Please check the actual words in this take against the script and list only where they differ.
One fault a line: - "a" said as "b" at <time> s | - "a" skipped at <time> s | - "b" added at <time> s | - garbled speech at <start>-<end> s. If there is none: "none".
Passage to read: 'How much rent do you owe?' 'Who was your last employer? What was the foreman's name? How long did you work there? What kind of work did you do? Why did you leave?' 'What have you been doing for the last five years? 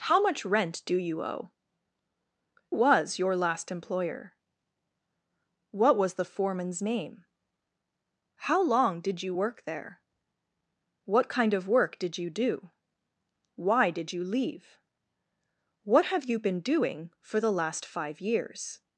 - "Who" skipped at 1.5 s